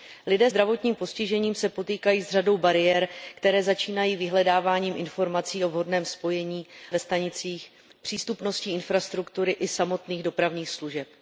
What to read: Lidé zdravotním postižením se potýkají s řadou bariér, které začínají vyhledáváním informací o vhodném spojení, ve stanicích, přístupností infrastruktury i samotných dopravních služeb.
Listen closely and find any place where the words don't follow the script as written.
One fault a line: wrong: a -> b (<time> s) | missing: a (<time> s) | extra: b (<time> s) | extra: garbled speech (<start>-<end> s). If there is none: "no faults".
no faults